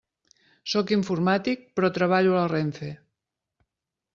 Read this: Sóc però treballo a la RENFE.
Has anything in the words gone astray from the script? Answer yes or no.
yes